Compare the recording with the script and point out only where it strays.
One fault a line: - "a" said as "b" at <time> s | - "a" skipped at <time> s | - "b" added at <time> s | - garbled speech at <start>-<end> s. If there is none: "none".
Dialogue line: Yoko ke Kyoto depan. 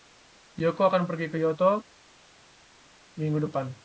- "akan pergi" added at 0.9 s
- "minggu" added at 3.2 s